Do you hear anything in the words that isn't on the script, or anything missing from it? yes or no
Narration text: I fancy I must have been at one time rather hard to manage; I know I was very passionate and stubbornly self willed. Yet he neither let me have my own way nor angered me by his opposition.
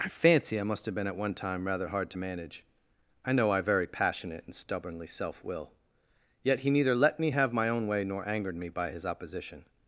yes